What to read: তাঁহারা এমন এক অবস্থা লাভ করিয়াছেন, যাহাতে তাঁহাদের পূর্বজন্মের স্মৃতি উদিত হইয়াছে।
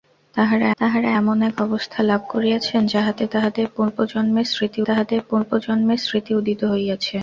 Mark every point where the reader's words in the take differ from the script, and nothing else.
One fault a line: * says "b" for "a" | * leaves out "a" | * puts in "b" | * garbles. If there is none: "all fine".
* puts in "তাঁহারা"
* puts in "তাঁহাদের পূর্বজন্মের স্মৃতি"